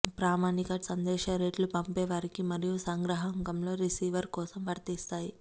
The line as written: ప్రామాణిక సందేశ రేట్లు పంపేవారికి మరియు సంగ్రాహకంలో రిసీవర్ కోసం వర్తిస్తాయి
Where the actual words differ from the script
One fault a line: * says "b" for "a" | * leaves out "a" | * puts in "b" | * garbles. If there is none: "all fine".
all fine